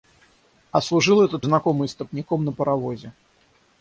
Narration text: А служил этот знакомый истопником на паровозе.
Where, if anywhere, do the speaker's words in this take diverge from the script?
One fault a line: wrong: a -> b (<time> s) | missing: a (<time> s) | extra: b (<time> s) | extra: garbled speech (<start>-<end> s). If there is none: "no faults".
no faults